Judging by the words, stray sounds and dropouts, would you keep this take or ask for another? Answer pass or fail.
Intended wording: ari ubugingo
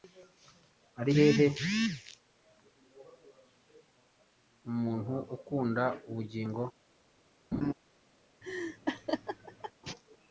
fail